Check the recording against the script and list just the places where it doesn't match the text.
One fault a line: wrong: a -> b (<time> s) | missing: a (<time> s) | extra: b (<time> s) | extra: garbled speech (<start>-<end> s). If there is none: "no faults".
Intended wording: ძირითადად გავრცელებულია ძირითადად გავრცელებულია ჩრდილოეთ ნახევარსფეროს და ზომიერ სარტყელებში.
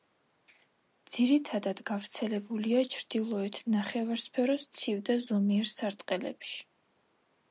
missing: ძირითადად გავრცელებულია (2.8 s)
extra: ცივ (4.8 s)